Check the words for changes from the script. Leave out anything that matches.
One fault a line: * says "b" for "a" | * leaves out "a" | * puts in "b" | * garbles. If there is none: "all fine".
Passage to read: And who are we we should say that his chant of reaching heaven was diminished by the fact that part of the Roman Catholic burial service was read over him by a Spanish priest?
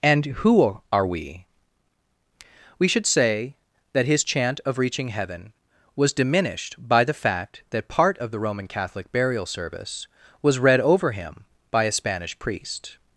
all fine